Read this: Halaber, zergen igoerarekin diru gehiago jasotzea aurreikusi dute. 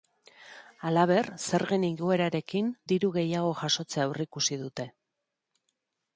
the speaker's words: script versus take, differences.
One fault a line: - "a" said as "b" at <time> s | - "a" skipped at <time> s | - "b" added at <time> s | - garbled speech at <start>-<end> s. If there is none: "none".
none